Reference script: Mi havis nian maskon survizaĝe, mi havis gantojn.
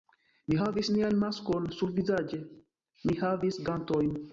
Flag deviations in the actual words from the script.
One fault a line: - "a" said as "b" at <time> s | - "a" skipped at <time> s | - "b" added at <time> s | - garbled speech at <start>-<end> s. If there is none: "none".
none